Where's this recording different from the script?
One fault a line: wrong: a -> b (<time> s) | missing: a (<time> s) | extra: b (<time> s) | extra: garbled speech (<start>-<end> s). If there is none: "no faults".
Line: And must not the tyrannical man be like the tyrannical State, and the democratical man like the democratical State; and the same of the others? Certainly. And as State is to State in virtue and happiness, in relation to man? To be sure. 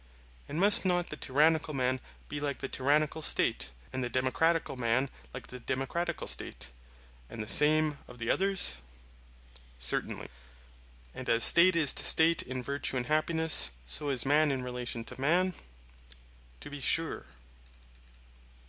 extra: so is man (13.8 s)